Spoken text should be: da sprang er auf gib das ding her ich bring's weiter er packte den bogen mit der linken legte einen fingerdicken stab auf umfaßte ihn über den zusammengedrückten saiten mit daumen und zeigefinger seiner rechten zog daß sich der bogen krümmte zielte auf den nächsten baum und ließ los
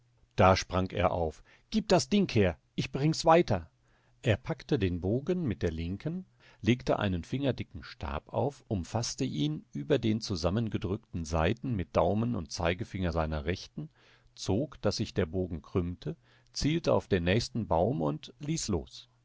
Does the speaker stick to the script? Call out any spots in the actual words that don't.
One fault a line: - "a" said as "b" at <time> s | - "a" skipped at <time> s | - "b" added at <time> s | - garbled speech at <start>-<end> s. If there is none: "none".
none